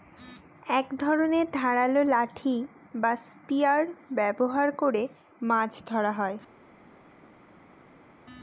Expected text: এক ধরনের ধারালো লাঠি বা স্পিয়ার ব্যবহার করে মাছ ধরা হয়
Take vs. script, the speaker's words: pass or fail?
pass